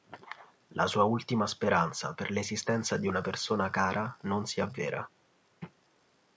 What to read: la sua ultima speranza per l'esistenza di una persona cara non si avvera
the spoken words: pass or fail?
pass